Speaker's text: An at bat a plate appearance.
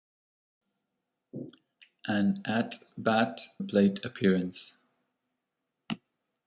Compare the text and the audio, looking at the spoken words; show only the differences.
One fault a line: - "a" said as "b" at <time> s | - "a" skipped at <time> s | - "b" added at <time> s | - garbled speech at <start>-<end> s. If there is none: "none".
none